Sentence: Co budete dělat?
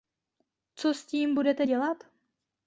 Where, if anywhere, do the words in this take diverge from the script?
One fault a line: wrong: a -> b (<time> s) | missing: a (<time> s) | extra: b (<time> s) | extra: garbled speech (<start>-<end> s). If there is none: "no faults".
extra: s tím (0.9 s)